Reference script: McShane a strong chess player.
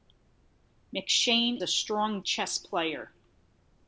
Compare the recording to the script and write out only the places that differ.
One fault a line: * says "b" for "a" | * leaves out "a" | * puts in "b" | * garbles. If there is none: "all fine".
all fine